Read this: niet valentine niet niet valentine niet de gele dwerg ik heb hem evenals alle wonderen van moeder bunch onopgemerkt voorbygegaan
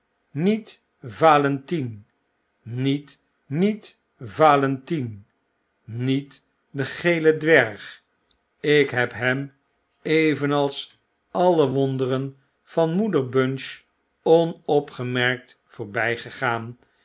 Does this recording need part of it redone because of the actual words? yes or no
no